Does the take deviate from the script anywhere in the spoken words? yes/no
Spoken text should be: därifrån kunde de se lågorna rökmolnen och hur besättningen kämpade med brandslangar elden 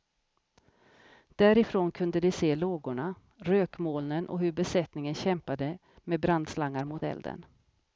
yes